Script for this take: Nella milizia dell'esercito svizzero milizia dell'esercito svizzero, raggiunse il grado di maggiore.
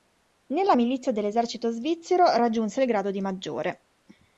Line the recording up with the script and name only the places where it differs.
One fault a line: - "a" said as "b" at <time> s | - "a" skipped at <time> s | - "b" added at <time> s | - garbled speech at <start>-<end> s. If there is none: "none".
- "milizia dell'esercito svizzero" skipped at 2.4 s